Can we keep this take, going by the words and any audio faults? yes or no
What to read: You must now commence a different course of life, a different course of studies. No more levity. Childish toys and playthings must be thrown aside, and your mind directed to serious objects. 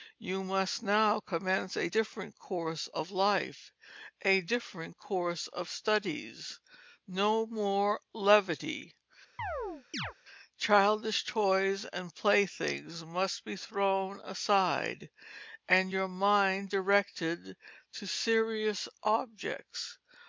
no